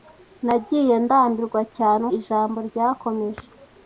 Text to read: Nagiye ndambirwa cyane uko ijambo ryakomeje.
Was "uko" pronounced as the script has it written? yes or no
no